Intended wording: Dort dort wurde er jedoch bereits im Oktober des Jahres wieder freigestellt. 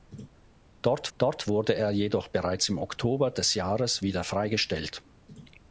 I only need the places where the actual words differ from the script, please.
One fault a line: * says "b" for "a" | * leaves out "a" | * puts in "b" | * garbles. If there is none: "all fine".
all fine